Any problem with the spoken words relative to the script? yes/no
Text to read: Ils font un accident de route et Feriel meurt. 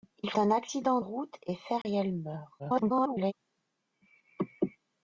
yes